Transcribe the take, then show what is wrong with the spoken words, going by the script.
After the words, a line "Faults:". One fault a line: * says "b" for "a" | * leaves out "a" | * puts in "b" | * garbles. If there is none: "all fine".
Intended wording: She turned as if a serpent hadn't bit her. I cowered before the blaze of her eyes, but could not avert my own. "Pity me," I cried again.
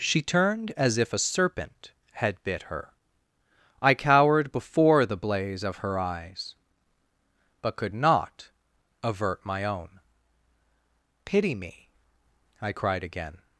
She turned as if a serpent had bit her. I cowered before the blaze of her eyes, but could not avert my own. "Pity me," I cried again.
Faults:
* says "had" for "hadn't"